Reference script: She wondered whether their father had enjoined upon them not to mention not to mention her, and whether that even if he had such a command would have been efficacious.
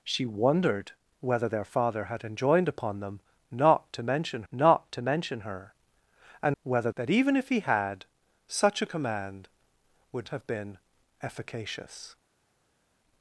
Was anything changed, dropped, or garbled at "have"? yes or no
no